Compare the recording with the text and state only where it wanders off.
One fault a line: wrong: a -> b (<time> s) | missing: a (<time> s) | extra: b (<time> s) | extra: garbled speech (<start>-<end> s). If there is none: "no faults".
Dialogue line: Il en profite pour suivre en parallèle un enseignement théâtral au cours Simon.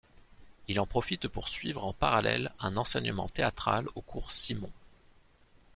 no faults